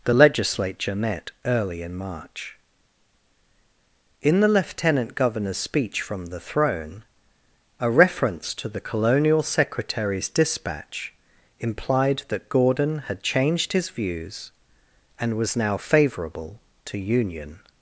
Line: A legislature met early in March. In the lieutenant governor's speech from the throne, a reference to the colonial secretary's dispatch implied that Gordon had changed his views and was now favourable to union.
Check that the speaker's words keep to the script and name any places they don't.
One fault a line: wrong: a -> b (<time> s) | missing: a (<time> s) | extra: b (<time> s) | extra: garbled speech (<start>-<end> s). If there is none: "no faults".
wrong: A -> The (0.0 s)